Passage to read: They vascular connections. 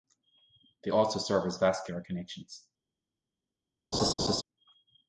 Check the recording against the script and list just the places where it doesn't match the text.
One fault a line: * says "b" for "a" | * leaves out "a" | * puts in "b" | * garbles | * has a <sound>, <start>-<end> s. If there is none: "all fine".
* puts in "also serve as"
* has a laugh, 3.9-4.4 s